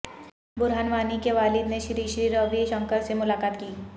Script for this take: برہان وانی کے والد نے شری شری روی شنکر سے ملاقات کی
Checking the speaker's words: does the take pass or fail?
pass